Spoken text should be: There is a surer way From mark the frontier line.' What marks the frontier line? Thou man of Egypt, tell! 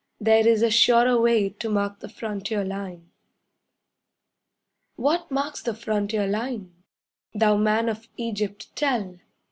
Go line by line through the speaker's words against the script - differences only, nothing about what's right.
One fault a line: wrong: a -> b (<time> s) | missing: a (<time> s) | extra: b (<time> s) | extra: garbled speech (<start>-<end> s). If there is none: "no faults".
wrong: From -> To (1.5 s)